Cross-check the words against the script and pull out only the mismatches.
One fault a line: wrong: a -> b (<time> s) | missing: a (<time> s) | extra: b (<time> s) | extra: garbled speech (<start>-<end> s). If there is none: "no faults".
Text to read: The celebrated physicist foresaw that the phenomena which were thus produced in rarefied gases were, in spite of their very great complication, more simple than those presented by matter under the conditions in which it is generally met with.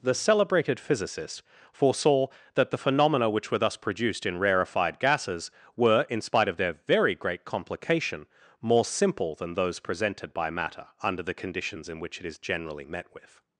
no faults